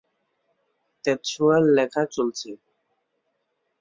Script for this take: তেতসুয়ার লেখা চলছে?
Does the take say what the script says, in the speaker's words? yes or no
yes